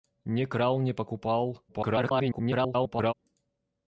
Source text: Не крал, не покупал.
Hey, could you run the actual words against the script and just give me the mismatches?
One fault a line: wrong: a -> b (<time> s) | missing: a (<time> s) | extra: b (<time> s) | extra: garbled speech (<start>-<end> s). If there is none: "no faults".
extra: garbled speech (1.7-3.1 s)